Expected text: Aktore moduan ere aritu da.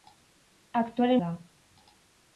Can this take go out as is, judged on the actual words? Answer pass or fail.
fail